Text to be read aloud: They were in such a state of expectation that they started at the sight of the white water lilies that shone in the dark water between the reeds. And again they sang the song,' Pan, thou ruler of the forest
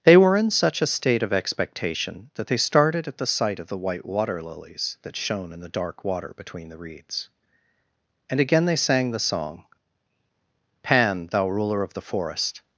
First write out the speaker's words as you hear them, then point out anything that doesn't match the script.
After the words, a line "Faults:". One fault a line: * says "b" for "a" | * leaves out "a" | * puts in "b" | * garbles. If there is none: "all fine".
They were in such a state of expectation that they started at the sight of the white water lilies that shone in the dark water between the reeds. And again they sang the song,' Pan, thou ruler of the forest
Faults:
all fine